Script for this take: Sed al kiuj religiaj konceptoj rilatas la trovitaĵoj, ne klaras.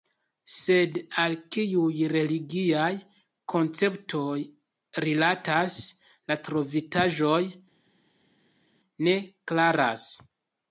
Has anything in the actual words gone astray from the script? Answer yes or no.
no